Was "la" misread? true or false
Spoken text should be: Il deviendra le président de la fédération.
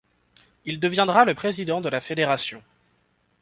false